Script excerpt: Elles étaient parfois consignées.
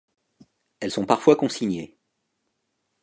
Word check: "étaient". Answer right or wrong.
wrong